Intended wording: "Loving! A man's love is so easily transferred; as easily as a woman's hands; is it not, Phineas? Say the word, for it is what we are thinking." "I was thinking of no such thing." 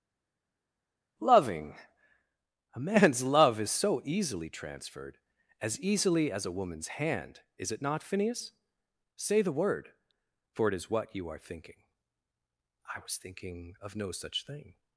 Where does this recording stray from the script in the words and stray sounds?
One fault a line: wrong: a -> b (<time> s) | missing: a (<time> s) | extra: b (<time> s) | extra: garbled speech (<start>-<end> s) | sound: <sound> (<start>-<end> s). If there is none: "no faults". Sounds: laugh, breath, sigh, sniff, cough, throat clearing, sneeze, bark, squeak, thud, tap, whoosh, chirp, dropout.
wrong: hands -> hand (7.0 s)
wrong: we -> you (11.2 s)